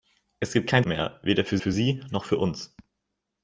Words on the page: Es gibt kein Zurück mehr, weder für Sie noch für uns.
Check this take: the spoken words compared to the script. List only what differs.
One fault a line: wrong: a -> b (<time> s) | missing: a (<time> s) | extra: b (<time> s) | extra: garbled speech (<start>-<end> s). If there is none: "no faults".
missing: Zurück (0.8 s)
extra: für (1.6 s)